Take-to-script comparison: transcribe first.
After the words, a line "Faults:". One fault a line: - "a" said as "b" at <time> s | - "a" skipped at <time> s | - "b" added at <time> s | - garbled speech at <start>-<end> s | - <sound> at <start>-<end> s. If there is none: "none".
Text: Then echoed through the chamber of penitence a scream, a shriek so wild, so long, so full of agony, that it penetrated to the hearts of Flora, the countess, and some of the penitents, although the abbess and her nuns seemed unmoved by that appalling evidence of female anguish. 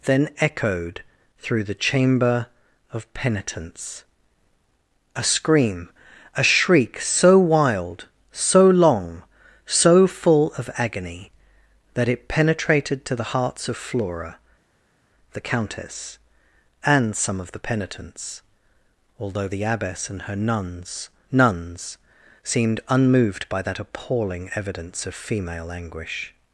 Then echoed through the chamber of penitence a scream, a shriek so wild, so long, so full of agony, that it penetrated to the hearts of Flora, the countess, and some of the penitents, although the abbess and her nuns nuns seemed unmoved by that appalling evidence of female anguish.
Faults:
- "nuns" added at 21.3 s